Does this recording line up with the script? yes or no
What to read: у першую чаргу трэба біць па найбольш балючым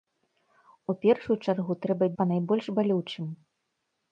no